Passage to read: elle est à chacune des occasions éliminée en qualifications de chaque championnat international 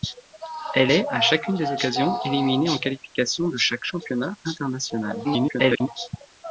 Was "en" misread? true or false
false